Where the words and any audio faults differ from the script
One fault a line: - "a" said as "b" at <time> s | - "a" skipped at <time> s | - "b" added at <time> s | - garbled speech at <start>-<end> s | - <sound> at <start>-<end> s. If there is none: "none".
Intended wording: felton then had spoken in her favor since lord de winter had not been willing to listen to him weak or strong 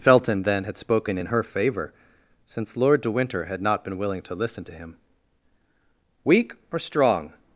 none